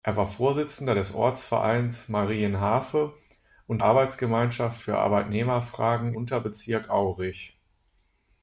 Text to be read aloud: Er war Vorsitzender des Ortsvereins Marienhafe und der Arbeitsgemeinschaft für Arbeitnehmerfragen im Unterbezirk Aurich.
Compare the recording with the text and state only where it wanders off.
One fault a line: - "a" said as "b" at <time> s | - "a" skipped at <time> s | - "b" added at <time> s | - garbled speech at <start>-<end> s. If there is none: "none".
- "der" skipped at 3.8 s
- "im" skipped at 6.1 s